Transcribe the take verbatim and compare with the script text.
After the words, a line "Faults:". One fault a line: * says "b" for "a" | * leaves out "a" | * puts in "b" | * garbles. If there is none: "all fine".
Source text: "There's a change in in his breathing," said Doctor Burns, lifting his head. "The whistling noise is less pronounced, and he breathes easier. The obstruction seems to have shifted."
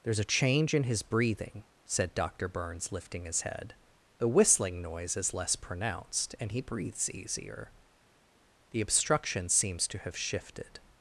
"There's a change in his breathing," said Doctor Burns, lifting his head. "The whistling noise is less pronounced, and he breathes easier. The obstruction seems to have shifted."
Faults:
* leaves out "in"